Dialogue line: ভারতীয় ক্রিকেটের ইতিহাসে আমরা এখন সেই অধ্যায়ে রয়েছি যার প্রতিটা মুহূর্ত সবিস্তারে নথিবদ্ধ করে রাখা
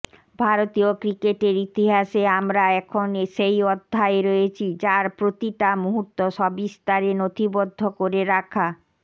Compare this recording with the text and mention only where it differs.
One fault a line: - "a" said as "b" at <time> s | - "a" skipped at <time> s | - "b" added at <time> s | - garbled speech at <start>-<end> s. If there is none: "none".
none